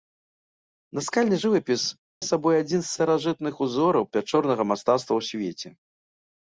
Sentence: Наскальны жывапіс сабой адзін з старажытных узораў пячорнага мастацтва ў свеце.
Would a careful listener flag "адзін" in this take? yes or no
no